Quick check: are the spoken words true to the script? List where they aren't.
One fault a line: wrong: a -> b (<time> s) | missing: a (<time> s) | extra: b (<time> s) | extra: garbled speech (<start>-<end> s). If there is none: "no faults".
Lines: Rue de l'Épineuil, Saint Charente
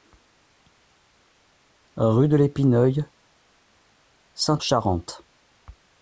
no faults